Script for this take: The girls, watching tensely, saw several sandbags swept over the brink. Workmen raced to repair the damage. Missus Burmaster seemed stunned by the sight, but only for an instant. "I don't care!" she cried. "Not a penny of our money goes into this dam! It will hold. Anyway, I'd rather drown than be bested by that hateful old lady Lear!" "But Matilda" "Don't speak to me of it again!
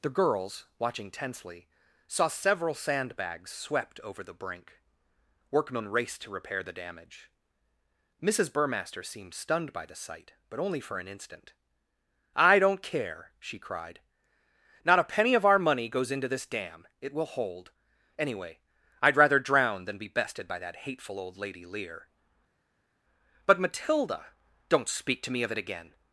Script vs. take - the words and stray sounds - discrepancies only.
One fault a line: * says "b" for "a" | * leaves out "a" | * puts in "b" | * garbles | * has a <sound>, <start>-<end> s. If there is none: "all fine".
all fine